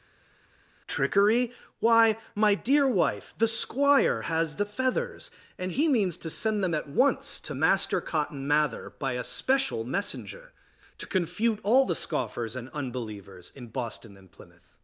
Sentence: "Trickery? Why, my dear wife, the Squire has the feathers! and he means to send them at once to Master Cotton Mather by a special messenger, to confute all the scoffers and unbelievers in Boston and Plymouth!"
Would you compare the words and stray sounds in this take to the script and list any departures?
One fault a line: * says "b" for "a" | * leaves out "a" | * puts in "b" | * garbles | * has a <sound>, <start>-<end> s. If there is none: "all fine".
all fine